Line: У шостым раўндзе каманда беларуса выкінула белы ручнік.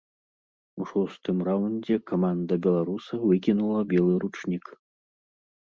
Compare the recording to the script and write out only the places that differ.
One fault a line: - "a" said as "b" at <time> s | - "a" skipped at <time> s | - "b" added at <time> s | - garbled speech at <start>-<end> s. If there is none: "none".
none